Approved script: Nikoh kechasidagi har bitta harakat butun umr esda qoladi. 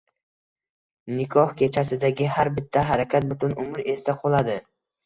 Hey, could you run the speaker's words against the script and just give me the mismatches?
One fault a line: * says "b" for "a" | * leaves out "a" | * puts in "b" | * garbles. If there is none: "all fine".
all fine